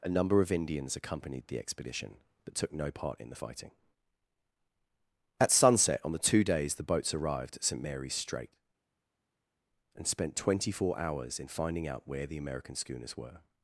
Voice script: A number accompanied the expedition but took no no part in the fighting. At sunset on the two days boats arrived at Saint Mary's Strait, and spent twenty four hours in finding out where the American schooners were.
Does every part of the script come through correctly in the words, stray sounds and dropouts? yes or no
no